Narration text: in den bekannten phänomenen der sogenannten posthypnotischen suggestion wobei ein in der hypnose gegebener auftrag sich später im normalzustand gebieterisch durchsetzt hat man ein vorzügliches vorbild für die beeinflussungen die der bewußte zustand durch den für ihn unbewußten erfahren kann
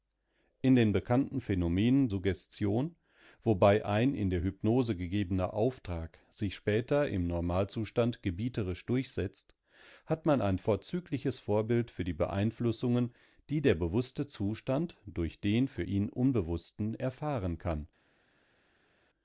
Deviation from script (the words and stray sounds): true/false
true